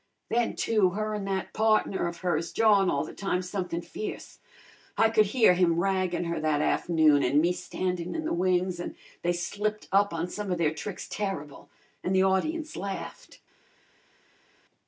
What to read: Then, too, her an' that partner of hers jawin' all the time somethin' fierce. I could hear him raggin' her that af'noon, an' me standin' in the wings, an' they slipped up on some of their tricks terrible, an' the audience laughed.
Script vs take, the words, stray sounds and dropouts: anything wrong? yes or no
no